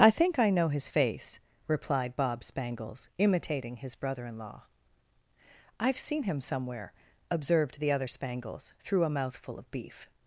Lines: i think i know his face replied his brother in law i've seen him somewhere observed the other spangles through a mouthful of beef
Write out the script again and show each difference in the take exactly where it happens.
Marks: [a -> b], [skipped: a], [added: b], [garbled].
i think i know his face replied [added: bob spangles imitating] his brother in law i've seen him somewhere observed the other spangles through a mouthful of beef